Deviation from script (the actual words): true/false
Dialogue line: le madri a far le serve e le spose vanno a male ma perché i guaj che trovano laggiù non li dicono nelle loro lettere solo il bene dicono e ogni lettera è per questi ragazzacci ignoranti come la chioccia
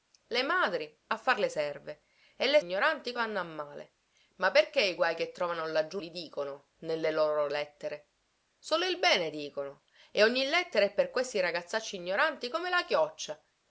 true